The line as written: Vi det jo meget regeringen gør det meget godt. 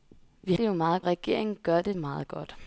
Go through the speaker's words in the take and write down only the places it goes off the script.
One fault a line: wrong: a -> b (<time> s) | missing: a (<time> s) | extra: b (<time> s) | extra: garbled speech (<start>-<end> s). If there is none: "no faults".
no faults